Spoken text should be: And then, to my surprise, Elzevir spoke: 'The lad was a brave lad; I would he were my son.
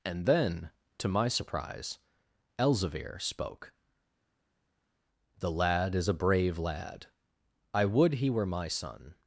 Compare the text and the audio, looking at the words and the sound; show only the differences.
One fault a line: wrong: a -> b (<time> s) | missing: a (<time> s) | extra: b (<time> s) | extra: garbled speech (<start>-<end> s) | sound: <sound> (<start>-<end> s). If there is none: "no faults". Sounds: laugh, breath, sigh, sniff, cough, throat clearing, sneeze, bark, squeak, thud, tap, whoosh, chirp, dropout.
wrong: was -> is (6.0 s)